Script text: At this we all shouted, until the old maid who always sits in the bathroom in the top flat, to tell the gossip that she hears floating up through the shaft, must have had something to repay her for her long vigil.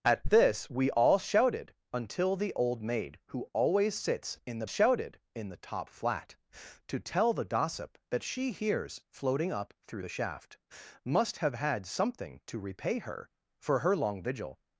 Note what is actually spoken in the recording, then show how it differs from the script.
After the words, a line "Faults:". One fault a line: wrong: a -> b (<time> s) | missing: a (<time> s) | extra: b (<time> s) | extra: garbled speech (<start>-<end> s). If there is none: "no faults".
At this we all shouted, until the old maid who always sits in the shouted in the top flat, to tell the gossip that she hears floating up through the shaft, must have had something to repay her for her long vigil.
Faults:
wrong: bathroom -> shouted (4.6 s)